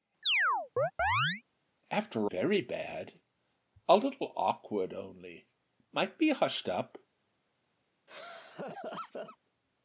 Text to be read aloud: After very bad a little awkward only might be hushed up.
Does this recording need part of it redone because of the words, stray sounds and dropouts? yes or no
yes